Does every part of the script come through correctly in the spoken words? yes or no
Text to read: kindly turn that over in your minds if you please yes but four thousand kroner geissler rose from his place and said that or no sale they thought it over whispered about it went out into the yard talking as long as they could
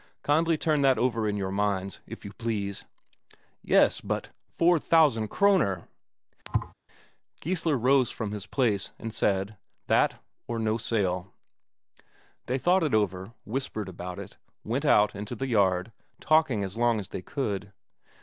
yes